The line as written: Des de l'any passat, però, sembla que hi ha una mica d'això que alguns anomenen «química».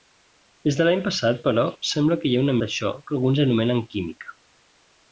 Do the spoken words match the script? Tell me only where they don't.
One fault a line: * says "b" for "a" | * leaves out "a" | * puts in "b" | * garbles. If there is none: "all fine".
* leaves out "mica"